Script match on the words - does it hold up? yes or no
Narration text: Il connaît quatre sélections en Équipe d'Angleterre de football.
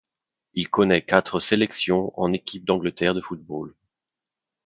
yes